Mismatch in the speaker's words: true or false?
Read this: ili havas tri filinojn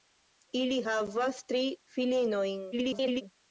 true